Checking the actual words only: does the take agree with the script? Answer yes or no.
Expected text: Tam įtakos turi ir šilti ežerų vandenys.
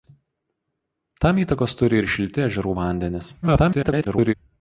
no